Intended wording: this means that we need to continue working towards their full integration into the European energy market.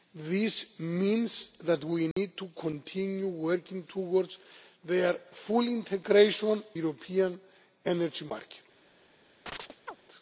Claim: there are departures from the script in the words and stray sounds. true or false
true